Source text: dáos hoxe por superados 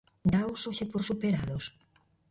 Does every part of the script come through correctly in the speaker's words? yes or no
yes